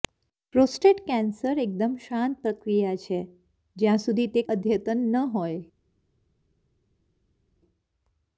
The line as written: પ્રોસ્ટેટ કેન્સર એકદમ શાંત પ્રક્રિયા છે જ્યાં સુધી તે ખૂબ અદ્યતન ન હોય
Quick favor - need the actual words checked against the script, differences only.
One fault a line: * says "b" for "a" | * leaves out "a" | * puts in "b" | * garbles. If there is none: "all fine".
* leaves out "ખૂબ"